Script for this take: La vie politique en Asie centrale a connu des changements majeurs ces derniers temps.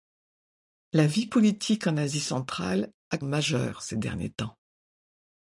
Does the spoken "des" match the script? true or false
false